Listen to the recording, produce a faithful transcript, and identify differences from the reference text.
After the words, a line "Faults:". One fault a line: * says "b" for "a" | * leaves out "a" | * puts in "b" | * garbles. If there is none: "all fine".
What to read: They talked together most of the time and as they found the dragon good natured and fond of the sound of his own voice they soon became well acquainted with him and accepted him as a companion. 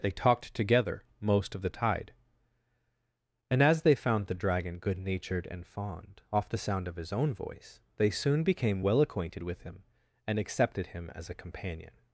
They talked together most of the tide and as they found the dragon good natured and fond off the sound of his own voice they soon became well acquainted with him and accepted him as a companion.
Faults:
* says "tide" for "time"
* says "off" for "of"